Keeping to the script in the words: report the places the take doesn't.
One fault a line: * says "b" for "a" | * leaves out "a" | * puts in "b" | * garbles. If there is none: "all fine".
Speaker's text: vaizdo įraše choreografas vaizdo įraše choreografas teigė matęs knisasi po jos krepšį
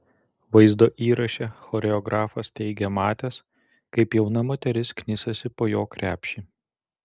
* says "teigė matęs kaip jauna moteris" for "vaizdo įraše choreografas teigė matęs"
* says "jo" for "jos"